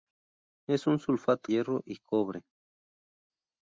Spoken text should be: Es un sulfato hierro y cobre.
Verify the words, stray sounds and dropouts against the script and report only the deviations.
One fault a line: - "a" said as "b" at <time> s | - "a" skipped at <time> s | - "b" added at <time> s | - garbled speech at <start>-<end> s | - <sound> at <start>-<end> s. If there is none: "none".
none